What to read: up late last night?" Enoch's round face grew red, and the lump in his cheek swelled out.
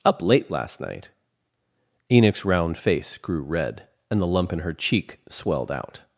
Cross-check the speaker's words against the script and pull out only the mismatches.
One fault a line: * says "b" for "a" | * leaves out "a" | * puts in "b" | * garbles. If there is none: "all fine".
* says "her" for "his"